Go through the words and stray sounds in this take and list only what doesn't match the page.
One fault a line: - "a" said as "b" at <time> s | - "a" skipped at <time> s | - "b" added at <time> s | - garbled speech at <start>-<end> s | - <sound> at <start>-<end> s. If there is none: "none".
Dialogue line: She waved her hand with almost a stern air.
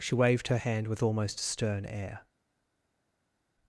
none